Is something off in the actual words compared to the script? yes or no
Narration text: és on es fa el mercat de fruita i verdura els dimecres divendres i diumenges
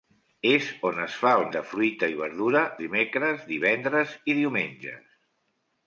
yes